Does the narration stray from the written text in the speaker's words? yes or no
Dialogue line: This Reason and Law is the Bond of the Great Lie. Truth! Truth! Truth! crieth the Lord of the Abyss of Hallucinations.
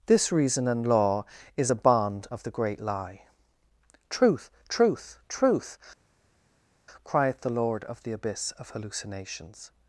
yes